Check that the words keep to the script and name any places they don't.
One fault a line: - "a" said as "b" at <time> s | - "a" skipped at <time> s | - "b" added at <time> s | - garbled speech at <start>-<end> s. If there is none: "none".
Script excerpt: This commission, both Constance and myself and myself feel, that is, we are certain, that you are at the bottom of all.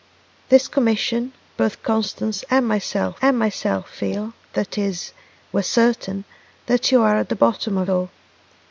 none